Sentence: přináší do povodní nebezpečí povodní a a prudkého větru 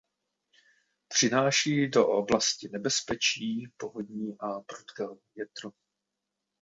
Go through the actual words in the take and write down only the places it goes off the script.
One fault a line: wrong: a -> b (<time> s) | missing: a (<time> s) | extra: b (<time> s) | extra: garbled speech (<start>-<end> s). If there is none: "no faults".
wrong: povodní -> oblasti (2.1 s)
missing: a (4.6 s)